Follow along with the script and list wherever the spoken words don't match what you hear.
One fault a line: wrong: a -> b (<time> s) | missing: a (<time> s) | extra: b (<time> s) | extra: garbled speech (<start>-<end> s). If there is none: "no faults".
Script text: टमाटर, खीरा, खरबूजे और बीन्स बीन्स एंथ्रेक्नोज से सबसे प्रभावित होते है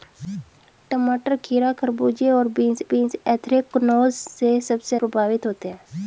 no faults